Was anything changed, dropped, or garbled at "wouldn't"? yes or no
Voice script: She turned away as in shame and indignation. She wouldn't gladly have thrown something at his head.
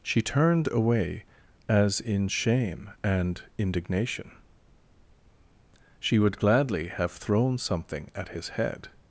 yes